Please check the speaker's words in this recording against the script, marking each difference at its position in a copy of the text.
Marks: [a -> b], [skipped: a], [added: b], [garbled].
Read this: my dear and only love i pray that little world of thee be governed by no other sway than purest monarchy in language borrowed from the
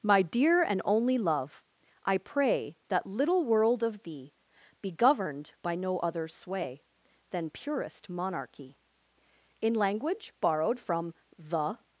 my dear and only love i pray that little world of thee be governed by no other sway than purest monarchy in language borrowed from the